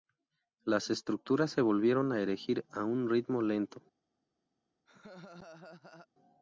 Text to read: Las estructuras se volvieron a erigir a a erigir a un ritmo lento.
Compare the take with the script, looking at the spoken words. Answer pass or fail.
fail